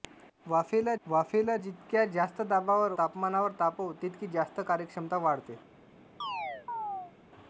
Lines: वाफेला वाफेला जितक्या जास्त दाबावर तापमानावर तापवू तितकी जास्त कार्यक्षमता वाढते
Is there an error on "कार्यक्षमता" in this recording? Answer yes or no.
no